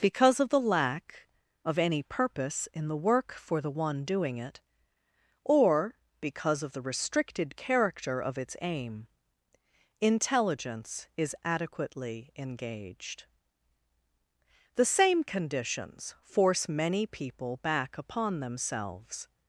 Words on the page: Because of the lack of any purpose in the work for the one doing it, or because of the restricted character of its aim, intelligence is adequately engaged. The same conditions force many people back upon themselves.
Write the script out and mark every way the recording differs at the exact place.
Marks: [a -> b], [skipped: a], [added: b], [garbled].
Because of the lack of any purpose in the work for the one doing it, or because of the restricted character of its aim, intelligence is adequately engaged. The same conditions force many people back upon themselves.